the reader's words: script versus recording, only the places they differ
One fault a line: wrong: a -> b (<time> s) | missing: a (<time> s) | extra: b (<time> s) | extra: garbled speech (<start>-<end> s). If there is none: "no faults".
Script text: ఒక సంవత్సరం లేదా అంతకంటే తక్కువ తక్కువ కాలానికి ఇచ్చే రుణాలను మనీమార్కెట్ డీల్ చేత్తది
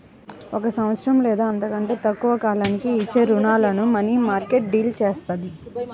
missing: తక్కువ (2.3 s)